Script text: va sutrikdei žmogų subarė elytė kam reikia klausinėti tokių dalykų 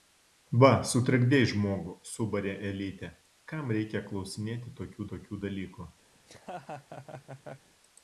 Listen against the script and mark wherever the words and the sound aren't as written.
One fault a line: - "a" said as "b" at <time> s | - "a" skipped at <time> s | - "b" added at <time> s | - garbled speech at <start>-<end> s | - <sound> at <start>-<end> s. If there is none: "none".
- "tokių" added at 5.1 s
- laugh at 6.2-7.7 s